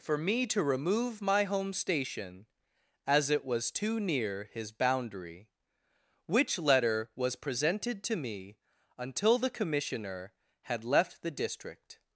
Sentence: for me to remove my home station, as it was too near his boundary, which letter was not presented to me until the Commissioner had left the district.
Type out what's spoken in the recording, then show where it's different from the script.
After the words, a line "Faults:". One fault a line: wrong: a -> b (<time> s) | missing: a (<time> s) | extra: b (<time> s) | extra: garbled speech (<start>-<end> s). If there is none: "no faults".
for me to remove my home station, as it was too near his boundary, which letter was presented to me until the Commissioner had left the district.
Faults:
missing: not (7.3 s)